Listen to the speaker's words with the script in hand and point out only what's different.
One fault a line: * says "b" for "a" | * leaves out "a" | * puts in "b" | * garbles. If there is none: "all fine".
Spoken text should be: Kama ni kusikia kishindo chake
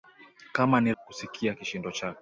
all fine